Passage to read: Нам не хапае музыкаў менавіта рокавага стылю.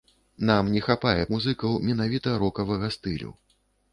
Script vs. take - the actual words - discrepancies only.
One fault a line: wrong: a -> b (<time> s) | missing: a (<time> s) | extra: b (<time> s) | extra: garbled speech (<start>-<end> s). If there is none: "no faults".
no faults